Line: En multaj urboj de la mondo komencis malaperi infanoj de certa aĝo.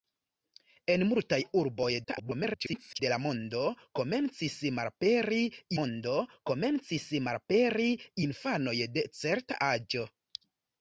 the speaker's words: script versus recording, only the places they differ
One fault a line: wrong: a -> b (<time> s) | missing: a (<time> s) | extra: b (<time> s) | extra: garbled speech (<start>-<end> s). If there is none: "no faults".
extra: garbled speech (2.0-3.0 s)
extra: mondo komencis malaperi (5.8 s)